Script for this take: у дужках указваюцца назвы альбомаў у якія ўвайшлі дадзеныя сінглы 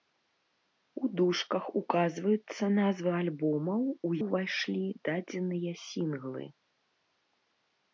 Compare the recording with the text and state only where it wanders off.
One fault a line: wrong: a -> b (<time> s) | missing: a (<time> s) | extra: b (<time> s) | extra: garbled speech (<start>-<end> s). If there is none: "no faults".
missing: якія (4.1 s)